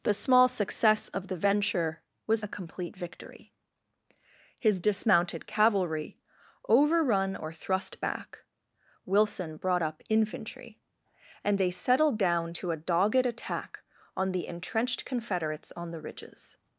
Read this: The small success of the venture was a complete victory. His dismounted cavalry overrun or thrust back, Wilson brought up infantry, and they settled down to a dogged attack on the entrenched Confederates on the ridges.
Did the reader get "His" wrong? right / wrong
right